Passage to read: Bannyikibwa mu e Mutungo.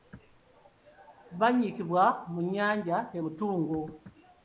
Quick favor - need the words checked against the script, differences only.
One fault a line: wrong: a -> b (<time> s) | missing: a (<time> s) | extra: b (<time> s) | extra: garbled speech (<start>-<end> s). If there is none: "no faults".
extra: nnyanja (2.5 s)